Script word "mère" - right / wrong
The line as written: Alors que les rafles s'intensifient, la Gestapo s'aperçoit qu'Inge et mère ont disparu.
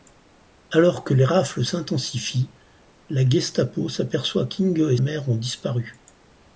right